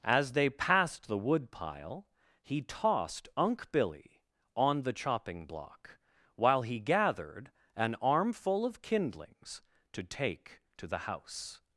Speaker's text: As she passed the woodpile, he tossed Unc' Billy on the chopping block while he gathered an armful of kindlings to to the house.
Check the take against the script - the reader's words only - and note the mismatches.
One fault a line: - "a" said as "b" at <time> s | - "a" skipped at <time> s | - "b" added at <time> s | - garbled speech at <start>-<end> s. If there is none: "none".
- "she" said as "they" at 0.3 s
- "take" added at 10.0 s